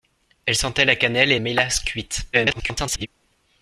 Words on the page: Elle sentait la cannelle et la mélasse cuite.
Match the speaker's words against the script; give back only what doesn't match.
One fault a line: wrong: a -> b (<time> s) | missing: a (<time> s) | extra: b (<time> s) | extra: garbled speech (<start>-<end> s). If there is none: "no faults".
missing: la (1.4 s)
extra: garbled speech (2.3-3.1 s)